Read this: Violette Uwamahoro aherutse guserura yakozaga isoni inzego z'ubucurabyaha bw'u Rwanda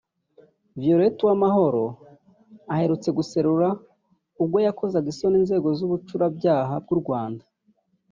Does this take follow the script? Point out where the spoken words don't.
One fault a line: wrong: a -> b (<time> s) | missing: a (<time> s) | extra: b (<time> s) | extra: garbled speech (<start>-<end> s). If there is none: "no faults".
extra: ubwo (4.4 s)